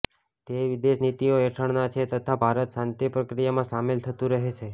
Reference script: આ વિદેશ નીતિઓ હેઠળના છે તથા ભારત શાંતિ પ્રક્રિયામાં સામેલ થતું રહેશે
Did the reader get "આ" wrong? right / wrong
wrong